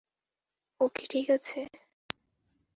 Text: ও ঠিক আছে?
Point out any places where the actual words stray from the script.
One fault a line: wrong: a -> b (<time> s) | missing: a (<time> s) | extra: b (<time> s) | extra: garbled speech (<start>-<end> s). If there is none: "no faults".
extra: কি (0.9 s)